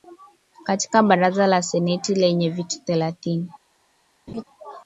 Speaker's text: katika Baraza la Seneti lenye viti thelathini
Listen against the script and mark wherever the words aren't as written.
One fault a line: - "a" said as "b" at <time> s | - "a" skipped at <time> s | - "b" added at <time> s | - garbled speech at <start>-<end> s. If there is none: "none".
none